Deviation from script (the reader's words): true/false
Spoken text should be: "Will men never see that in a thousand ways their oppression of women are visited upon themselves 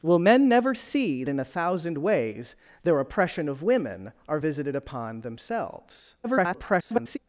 true